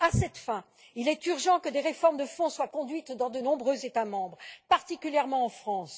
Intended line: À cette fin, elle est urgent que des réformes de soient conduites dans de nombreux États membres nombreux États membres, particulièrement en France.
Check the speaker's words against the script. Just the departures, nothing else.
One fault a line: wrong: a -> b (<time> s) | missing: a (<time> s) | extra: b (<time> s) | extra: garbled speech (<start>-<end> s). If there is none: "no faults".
wrong: elle -> il (0.9 s)
extra: fond (2.2 s)
missing: nombreux États membres (4.4 s)